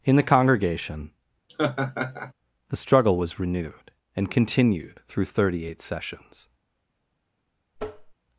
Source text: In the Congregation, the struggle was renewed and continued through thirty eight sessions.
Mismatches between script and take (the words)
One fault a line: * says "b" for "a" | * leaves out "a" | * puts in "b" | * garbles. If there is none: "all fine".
all fine